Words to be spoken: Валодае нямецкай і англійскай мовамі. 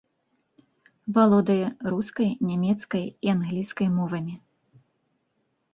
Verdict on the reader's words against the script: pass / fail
fail